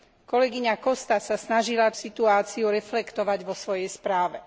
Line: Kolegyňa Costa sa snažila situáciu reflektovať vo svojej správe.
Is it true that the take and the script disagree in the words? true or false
false